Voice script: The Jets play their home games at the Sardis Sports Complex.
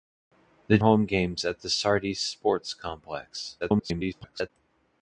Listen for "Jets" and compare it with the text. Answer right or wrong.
wrong